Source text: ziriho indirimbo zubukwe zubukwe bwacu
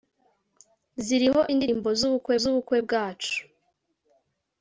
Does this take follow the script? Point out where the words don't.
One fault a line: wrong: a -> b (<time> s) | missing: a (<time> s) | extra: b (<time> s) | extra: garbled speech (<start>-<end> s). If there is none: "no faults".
no faults